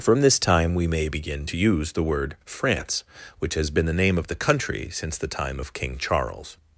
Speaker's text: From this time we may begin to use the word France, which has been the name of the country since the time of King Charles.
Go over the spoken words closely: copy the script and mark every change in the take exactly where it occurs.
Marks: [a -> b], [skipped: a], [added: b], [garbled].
From this time we may begin to use the word France, which has been the name of the country since the time of King Charles.